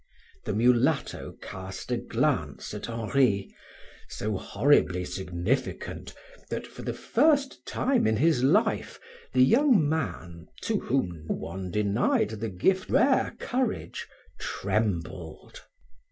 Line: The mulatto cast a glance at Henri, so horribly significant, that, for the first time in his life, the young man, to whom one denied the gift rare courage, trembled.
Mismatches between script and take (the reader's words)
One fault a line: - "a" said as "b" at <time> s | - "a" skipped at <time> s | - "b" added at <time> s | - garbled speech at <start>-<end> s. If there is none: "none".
none